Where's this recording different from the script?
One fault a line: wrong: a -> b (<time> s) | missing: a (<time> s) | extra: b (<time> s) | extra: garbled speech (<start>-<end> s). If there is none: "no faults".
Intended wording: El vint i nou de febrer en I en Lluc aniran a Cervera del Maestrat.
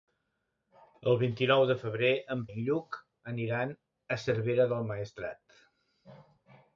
no faults